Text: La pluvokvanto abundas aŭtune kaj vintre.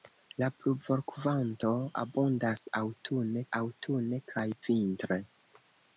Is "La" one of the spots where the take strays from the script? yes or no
no